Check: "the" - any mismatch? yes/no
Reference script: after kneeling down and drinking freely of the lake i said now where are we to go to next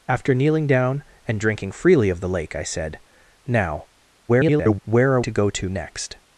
no